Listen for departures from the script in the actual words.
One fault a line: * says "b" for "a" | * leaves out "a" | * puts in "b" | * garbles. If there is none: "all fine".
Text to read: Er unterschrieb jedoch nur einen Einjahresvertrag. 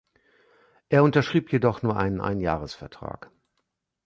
all fine